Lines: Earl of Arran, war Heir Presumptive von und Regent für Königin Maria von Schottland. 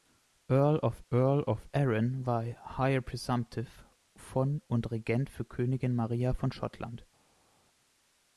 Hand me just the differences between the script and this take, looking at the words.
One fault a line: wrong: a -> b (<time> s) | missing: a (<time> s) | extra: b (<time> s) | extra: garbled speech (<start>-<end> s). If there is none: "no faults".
extra: earl of (1.1 s)